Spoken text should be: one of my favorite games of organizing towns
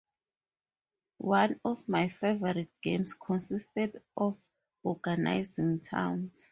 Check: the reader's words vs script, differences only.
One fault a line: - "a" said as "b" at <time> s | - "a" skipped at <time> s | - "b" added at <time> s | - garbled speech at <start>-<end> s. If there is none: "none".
- "consisted" added at 3.1 s